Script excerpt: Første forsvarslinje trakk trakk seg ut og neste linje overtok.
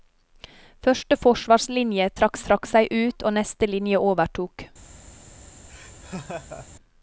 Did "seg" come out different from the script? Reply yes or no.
no